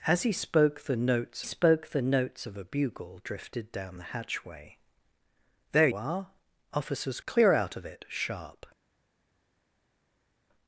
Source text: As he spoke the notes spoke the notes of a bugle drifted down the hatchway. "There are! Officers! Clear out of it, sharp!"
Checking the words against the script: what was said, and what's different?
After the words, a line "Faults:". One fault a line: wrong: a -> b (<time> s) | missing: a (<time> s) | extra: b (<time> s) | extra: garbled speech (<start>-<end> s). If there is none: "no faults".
As he spoke the notes spoke the notes of a bugle drifted down the hatchway. "There are! Officers! Clear out of it, sharp!"
Faults:
no faults